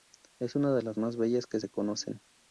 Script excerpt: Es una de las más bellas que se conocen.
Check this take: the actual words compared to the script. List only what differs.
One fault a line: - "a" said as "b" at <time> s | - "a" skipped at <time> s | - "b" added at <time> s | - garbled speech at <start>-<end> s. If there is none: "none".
none